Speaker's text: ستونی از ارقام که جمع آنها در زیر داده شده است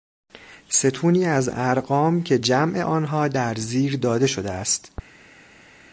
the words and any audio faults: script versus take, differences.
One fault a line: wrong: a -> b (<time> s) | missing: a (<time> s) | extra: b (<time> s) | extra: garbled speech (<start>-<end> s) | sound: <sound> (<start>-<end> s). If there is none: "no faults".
no faults